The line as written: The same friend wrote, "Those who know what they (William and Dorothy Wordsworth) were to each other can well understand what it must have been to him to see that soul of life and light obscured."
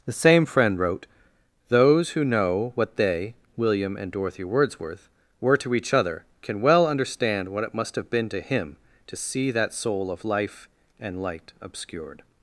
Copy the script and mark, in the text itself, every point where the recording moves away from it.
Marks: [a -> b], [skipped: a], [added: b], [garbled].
The same friend wrote, "Those who know what they (William and Dorothy Wordsworth) were to each other can well understand what it must have been to him to see that soul of life and light obscured."